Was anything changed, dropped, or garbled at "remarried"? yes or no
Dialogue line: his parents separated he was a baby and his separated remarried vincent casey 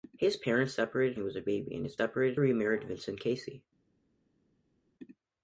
no